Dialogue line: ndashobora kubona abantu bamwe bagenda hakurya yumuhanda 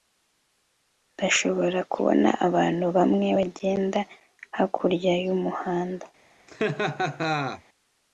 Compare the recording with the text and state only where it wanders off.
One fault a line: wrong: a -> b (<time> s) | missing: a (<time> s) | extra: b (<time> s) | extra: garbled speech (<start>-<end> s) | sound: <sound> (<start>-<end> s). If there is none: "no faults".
sound: laugh (6.5-7.6 s)